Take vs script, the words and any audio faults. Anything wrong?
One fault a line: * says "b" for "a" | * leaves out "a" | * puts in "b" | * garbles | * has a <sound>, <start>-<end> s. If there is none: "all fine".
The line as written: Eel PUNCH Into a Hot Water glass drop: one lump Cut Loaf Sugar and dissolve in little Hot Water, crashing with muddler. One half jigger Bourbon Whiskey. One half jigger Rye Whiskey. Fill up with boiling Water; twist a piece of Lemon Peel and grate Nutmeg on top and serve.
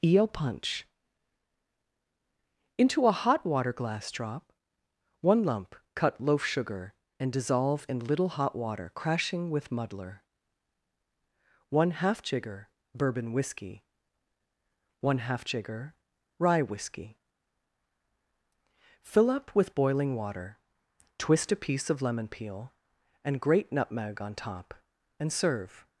all fine